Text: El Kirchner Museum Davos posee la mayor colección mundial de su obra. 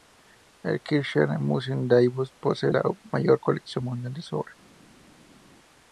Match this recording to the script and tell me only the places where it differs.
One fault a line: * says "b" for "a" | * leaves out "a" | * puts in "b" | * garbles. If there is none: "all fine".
all fine